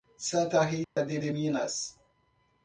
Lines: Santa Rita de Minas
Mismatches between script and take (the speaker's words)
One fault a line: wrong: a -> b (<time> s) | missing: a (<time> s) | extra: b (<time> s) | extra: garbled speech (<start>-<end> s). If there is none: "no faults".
extra: de (1.2 s)